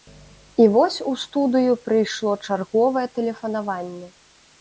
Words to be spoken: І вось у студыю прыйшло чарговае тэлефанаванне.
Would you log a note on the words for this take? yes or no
no